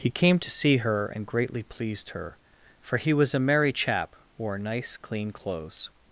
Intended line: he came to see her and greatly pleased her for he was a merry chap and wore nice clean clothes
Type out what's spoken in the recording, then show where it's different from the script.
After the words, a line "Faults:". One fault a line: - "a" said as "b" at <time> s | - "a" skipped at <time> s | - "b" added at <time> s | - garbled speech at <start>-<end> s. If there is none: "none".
he came to see her and greatly pleased her for he was a merry chap wore nice clean clothes
Faults:
- "and" skipped at 4.1 s